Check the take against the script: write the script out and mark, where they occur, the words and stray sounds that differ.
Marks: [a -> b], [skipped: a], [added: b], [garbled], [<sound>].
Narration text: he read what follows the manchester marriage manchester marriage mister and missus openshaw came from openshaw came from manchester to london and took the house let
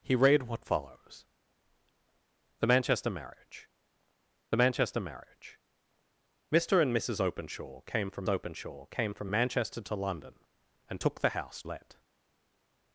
he read what follows the manchester marriage manchester marriage mister and missus openshaw came from openshaw came from manchester to london and took the house let